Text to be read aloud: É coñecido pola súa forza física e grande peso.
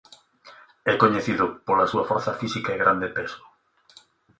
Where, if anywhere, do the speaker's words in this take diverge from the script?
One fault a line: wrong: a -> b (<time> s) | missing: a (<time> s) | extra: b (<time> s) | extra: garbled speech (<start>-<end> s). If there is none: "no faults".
no faults